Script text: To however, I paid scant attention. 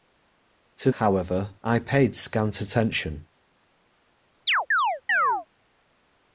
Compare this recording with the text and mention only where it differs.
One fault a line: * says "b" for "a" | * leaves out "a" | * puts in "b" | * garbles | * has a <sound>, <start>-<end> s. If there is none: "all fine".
* has a chirp, 4.5-5.5 s